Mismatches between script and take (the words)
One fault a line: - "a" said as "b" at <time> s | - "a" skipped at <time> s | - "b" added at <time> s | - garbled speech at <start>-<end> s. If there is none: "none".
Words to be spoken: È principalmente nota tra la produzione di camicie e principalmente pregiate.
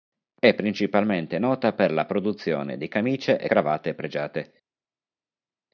- "tra" said as "per" at 1.7 s
- "principalmente" said as "cravatte" at 3.4 s